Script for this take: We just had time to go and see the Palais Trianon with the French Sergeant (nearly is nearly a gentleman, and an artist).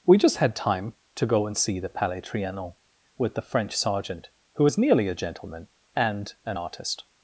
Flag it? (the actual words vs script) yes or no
yes